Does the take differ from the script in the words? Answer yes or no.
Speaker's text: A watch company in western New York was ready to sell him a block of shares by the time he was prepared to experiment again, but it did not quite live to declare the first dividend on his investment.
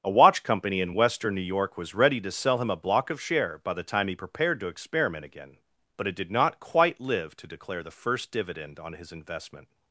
yes